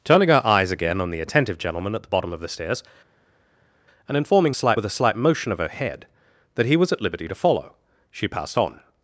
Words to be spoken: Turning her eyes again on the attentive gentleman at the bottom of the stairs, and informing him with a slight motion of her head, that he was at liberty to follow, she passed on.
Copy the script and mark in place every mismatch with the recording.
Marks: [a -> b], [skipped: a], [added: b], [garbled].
Turning her eyes again on the attentive gentleman at the bottom of the stairs, and informing [him -> slight] with a slight motion of her head, that he was at liberty to follow, she passed on.